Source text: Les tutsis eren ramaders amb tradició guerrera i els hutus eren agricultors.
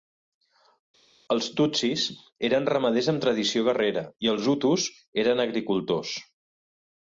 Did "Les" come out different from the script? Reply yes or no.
yes